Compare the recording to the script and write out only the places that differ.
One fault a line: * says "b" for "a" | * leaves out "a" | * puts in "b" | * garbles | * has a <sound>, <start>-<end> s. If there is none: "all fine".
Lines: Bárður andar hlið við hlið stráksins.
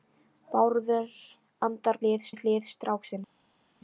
all fine